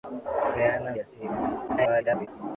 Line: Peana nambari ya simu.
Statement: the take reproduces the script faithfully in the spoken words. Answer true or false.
false